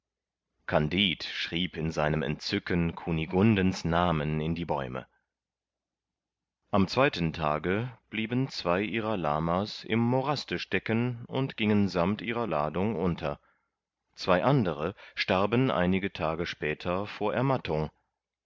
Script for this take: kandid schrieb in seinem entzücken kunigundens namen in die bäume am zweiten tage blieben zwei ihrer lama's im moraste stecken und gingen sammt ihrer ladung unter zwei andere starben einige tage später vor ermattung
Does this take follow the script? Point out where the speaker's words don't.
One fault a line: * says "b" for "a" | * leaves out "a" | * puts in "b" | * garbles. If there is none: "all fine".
all fine